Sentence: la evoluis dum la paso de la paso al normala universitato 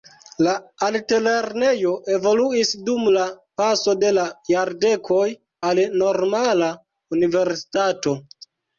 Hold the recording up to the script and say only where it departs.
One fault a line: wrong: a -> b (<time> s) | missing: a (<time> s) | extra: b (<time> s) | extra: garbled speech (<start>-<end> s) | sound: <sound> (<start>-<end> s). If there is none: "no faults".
extra: altlernejo (0.8 s)
wrong: paso -> jardekoj (4.5 s)